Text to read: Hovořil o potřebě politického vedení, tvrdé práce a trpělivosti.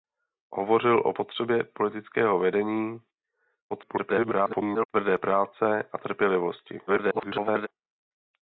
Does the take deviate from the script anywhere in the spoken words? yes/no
yes